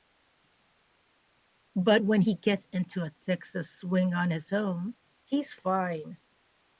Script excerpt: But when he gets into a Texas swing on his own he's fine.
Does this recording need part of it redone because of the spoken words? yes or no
no